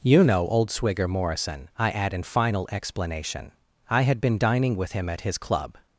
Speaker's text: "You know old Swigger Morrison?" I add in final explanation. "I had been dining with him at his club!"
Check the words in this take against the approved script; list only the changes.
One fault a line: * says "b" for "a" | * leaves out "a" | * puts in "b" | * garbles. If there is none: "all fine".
all fine